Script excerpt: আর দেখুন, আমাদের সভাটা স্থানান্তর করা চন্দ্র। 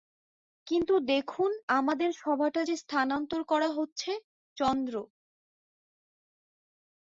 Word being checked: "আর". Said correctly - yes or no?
no